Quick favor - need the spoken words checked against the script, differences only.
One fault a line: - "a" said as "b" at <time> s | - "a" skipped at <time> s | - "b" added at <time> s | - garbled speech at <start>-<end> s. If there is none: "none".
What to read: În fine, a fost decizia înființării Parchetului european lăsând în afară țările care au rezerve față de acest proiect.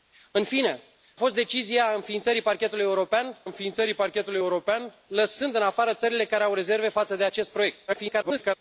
- "a" skipped at 0.8 s
- "înființării Parchetului european" added at 3.4 s
- garbled speech at 7.9-8.6 s